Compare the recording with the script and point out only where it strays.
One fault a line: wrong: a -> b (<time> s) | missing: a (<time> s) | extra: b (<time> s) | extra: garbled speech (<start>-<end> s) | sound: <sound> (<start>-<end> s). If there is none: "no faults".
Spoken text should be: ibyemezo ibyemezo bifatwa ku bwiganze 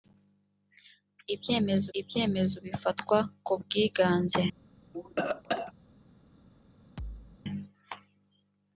sound: cough (4.9-5.7 s)
sound: thud (7.0-7.4 s)